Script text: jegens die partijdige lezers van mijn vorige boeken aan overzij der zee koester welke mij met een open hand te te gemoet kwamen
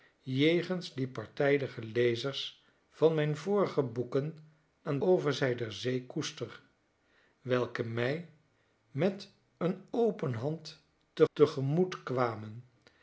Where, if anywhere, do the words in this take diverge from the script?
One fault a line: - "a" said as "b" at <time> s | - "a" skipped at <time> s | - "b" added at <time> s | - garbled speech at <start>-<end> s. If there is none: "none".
none